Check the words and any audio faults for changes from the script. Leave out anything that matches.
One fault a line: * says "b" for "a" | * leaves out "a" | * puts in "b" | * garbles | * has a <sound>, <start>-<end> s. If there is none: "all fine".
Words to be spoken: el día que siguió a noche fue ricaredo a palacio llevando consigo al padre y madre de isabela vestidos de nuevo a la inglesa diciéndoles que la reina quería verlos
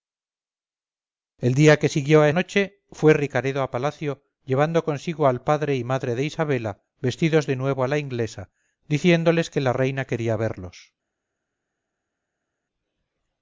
all fine